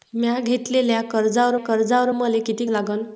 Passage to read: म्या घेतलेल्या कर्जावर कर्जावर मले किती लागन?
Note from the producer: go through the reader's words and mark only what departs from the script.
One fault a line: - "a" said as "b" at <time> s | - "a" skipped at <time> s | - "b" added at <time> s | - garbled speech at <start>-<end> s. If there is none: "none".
none